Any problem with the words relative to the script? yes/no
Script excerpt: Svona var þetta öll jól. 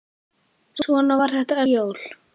yes